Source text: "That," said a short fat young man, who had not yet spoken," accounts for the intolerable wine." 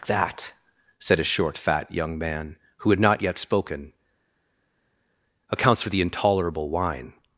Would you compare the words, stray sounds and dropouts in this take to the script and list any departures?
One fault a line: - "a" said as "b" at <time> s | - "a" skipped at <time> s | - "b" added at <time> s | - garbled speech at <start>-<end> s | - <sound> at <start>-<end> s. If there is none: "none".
none